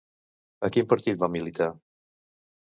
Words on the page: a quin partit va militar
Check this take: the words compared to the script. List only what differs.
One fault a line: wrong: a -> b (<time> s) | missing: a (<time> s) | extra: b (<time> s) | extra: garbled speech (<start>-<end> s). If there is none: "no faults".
no faults